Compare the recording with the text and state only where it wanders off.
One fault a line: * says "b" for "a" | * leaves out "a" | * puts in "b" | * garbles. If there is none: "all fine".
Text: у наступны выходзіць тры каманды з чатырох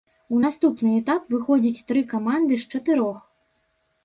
* puts in "этап"